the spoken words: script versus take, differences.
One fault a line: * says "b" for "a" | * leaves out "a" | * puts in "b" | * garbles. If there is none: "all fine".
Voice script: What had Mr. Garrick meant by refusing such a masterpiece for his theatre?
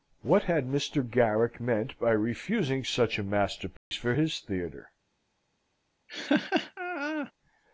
all fine